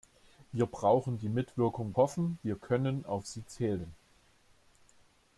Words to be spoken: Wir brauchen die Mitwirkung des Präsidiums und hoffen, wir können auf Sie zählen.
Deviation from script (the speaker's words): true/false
true